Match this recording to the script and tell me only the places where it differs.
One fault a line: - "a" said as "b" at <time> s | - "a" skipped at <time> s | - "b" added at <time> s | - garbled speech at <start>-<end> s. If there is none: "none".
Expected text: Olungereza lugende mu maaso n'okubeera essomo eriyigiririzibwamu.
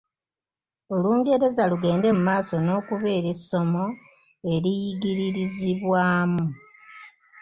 none